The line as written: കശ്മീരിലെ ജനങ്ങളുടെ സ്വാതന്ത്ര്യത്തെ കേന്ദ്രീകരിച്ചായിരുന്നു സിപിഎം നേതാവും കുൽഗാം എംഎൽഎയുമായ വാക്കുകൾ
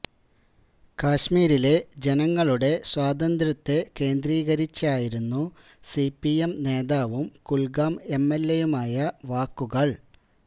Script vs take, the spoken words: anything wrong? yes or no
no